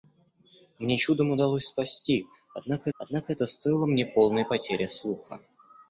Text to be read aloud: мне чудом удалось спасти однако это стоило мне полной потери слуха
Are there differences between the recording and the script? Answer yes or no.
yes